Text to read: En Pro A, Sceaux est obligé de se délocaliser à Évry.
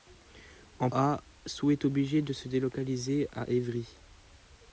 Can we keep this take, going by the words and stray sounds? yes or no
no